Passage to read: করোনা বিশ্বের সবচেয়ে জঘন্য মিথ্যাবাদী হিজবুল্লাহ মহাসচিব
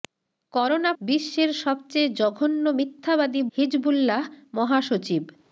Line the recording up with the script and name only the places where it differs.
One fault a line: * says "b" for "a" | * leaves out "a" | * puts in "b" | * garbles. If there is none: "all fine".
all fine